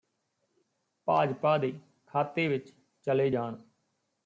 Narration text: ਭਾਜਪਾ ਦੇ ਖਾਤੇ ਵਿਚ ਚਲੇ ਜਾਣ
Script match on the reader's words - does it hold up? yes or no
yes